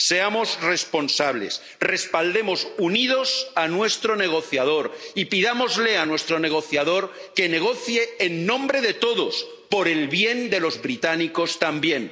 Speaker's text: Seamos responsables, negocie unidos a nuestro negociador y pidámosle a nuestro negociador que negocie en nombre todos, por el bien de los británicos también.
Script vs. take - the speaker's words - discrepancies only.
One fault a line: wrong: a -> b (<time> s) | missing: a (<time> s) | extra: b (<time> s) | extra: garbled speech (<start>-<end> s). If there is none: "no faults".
wrong: negocie -> respaldemos (1.8 s)
extra: de (8.8 s)